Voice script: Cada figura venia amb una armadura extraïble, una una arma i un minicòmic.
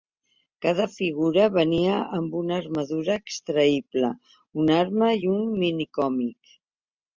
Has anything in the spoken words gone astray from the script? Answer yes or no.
yes